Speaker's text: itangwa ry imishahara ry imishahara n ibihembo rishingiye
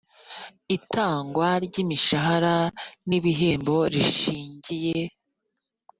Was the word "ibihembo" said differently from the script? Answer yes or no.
no